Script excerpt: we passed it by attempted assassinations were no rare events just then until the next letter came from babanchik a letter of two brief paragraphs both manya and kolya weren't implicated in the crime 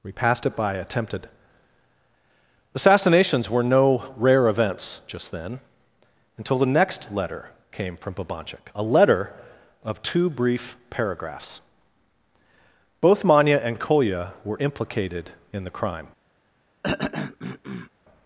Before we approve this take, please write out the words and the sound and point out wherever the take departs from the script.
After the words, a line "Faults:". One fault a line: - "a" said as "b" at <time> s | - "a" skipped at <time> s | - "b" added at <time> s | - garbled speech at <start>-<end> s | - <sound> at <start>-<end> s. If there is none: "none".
we passed it by attempted assassinations were no rare events just then until the next letter came from babanchik a letter of two brief paragraphs both manya and kolya were implicated in the crime
Faults:
- "weren't" said as "were" at 14.4 s
- throat clearing at 16.8-17.9 s